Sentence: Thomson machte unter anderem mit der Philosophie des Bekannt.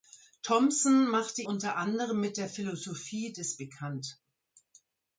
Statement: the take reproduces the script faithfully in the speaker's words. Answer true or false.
true